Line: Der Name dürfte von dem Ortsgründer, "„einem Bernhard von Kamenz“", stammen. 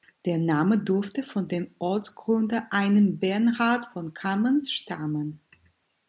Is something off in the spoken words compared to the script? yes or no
no